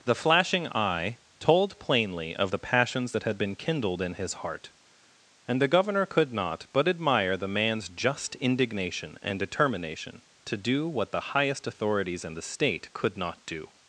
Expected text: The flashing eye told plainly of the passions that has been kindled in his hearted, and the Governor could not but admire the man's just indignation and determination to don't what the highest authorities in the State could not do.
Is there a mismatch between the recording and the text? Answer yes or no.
yes